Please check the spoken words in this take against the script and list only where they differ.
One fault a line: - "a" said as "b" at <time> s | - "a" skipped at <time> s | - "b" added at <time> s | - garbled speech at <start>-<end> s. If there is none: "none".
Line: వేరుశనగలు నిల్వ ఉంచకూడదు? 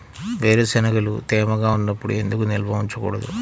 - "తేమగా ఉన్నప్పుడు ఎందుకు" added at 1.3 s